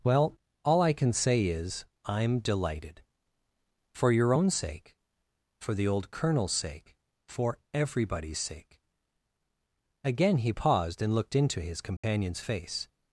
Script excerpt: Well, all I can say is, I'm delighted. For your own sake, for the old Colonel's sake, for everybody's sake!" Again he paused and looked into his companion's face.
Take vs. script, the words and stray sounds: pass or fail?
fail